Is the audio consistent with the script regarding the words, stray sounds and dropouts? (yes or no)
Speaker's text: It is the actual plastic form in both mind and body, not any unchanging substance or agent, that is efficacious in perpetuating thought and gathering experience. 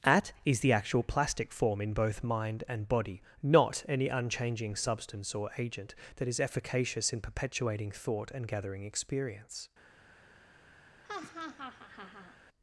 no